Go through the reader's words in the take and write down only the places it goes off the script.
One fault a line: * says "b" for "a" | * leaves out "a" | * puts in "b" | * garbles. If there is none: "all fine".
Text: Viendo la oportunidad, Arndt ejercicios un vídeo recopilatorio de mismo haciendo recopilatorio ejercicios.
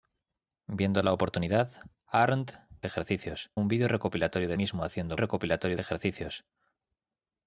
all fine